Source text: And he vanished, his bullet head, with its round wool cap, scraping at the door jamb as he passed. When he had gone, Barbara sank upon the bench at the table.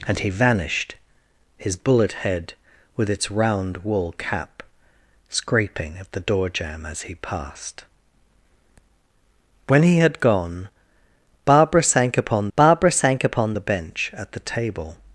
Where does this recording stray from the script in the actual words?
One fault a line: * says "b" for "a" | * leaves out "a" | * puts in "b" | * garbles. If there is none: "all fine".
* puts in "Barbara sank upon"